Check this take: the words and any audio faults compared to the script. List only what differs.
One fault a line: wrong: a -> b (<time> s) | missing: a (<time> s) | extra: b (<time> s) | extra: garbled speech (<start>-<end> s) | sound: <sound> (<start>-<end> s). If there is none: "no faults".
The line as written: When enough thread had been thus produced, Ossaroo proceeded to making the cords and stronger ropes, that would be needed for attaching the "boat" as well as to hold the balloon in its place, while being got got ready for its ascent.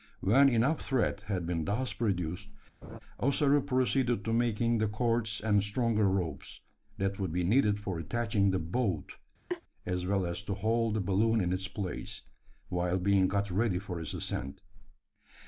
sound: laugh (2.8-3.0 s)
sound: laugh (9.5-9.6 s)
missing: got (13.5 s)